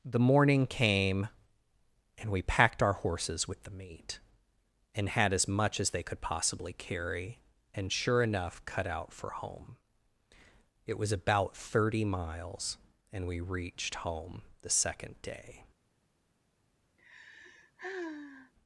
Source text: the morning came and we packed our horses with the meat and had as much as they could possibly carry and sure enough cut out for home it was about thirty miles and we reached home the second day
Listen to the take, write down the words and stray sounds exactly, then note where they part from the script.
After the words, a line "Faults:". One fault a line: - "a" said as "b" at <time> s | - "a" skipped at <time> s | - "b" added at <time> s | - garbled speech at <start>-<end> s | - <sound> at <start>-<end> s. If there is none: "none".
the morning came and we packed our horses with the meat and had as much as they could possibly carry and sure enough cut out for home it was about thirty miles and we reached home the second day
Faults:
- sigh at 17.0-18.5 s